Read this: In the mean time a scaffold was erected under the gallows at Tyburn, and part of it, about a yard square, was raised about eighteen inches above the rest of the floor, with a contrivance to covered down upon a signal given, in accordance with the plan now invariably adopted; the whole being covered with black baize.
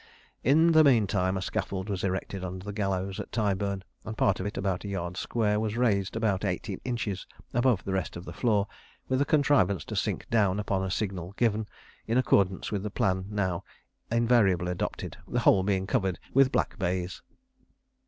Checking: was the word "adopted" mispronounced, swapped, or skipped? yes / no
no